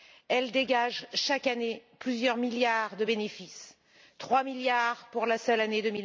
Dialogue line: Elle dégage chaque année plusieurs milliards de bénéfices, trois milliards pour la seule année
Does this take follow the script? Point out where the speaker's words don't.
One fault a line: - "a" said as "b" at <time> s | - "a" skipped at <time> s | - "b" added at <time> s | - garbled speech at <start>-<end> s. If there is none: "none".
none